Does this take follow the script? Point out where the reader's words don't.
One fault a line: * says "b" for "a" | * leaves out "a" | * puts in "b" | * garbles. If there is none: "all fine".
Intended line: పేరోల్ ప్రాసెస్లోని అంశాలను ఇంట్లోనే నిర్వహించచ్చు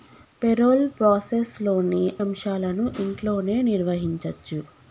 all fine